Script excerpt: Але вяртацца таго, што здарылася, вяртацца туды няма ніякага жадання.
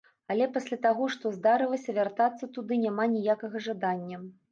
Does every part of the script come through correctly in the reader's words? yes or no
no